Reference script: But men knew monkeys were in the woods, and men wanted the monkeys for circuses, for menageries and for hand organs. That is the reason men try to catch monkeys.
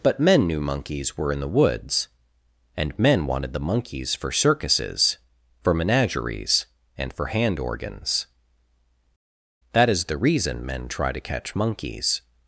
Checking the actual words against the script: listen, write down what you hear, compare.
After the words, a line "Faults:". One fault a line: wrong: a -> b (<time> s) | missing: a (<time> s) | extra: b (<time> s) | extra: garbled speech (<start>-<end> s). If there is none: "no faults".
But men knew monkeys were in the woods, and men wanted the monkeys for circuses, for menageries and for hand organs. That is the reason men try to catch monkeys.
Faults:
no faults